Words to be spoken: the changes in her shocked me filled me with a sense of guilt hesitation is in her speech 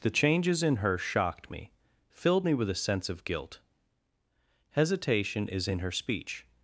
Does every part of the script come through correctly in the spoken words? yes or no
yes